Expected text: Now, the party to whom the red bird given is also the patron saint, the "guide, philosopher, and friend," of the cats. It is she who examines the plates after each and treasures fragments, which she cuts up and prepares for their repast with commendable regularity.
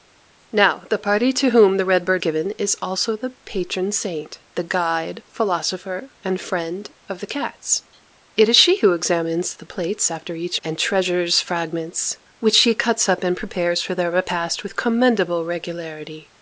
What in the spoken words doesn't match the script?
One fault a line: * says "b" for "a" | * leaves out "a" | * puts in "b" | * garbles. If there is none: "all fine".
all fine